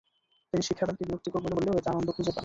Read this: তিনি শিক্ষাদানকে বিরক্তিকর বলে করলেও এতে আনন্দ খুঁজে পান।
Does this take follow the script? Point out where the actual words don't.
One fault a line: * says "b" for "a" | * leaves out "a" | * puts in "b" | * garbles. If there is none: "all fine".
all fine